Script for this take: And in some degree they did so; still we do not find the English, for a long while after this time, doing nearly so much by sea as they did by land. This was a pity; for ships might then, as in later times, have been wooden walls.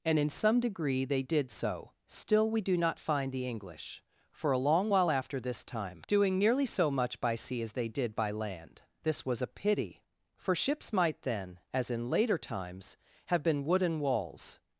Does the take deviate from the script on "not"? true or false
false